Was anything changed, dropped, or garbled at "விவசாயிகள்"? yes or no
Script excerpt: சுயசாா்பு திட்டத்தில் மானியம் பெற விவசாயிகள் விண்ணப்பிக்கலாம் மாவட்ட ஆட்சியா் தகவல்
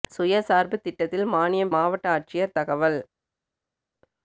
yes